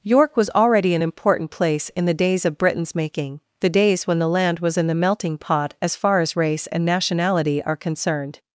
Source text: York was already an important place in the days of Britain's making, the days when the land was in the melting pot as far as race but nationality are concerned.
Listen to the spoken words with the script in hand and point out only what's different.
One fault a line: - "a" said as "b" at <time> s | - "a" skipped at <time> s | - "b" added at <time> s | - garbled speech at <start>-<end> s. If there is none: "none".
- "but" said as "and" at 6.7 s